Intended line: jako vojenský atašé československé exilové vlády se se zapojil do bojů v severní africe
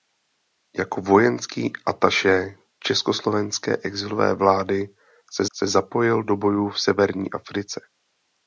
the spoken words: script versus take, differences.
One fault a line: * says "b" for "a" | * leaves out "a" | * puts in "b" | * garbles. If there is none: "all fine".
all fine